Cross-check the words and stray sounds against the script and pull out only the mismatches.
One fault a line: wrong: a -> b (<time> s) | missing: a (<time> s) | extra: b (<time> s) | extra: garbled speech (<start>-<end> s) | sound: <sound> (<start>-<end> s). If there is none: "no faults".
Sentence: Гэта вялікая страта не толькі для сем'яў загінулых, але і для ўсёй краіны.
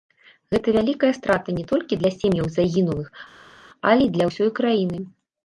no faults